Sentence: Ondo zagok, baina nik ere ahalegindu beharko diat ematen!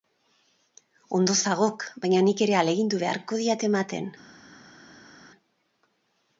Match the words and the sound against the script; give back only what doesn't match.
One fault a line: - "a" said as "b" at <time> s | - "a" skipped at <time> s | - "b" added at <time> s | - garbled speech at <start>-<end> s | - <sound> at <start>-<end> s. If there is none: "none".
none